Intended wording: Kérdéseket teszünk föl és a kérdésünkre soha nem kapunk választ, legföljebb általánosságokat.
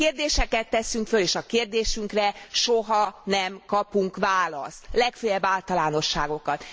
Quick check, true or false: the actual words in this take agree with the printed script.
true